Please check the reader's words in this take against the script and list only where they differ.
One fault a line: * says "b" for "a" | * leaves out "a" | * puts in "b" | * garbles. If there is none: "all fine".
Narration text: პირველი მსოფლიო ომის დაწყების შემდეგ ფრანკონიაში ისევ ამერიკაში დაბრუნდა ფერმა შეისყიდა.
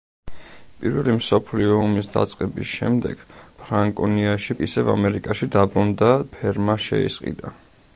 all fine